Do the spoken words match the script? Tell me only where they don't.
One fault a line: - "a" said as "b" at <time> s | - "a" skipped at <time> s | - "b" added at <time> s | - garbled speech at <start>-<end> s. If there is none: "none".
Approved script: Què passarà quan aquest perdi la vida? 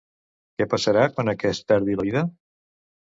none